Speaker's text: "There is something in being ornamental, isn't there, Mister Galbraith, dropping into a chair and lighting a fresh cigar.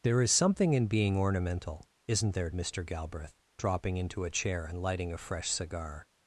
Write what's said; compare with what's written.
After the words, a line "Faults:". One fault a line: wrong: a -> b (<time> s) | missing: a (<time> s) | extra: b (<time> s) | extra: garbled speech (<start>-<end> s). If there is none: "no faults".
"There is something in being ornamental, isn't there, Mister Galbraith, dropping into a chair and lighting a fresh cigar.
Faults:
no faults